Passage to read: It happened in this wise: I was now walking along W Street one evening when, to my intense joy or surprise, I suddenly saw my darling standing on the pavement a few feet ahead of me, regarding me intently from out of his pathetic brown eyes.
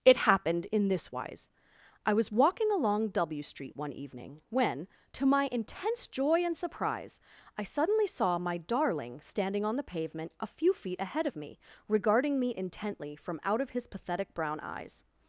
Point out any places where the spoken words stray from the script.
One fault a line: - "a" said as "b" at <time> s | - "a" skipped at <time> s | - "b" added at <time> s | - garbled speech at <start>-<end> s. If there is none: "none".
- "now" skipped at 2.3 s
- "or" said as "and" at 6.4 s